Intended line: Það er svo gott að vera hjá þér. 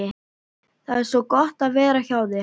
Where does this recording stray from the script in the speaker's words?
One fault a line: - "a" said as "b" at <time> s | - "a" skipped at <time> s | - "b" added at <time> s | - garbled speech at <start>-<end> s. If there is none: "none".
none